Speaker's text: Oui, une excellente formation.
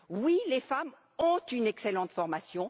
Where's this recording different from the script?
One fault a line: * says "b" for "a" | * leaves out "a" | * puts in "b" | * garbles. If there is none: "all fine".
* puts in "les femmes ont"